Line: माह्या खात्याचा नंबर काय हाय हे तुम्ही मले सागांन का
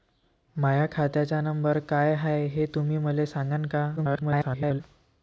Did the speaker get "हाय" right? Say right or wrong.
right